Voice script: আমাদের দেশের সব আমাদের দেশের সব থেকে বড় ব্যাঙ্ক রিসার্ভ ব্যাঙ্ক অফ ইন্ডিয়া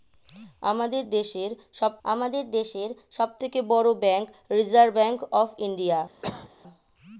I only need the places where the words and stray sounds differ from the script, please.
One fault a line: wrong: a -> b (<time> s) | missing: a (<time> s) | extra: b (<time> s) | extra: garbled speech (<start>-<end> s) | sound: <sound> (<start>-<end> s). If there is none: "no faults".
sound: cough (6.2-6.5 s)